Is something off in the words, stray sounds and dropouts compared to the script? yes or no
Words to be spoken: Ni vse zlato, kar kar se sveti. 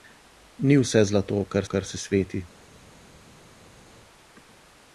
no